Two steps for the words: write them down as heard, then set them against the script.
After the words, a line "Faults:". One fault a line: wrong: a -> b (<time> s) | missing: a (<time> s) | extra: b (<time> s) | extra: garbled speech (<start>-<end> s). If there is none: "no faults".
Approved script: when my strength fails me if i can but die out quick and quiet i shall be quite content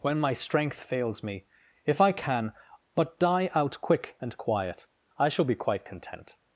when my strength fails me if i can but die out quick and quiet i shall be quite content
Faults:
no faults